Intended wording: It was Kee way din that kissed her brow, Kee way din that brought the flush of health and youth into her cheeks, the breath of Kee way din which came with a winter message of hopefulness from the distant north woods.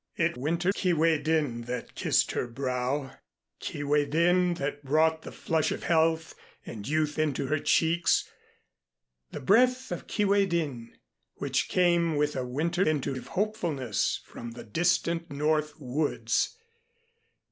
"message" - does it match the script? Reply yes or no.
no